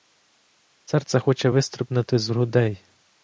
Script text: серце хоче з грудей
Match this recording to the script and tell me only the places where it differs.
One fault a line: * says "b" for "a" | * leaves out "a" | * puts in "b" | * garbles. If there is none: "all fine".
* puts in "вистрибнути"